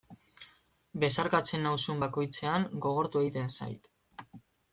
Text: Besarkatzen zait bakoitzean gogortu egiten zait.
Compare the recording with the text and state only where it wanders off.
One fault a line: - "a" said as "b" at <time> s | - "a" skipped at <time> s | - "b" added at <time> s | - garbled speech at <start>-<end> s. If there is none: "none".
- "zait" said as "nauzun" at 1.7 s